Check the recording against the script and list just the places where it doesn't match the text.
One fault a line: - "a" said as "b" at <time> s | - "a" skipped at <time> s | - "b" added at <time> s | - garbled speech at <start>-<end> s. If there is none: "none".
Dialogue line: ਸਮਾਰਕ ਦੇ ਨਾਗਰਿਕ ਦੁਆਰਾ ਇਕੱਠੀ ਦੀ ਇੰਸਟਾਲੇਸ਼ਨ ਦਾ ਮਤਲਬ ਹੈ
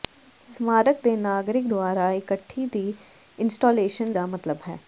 none